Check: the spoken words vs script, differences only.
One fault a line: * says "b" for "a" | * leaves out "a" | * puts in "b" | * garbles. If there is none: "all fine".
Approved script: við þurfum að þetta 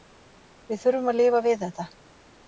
* puts in "lifa við"